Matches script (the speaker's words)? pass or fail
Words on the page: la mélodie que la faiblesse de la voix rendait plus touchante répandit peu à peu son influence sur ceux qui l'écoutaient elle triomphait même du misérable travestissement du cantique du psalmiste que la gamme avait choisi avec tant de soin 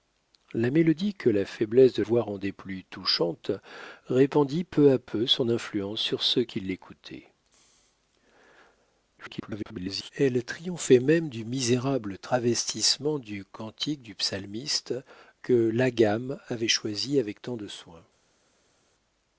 fail